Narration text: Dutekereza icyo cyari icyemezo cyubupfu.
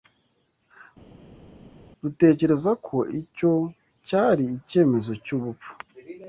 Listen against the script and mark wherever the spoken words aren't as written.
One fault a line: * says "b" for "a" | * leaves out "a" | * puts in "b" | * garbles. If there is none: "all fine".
* puts in "ko"